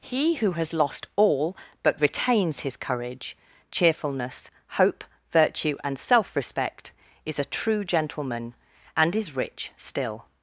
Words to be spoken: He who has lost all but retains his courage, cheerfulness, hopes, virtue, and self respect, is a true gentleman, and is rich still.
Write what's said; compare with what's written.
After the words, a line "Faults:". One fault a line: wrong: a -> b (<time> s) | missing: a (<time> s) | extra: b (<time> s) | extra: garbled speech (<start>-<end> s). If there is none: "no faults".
He who has lost all but retains his courage, cheerfulness, hope, virtue, and self respect, is a true gentleman, and is rich still.
Faults:
wrong: hopes -> hope (4.7 s)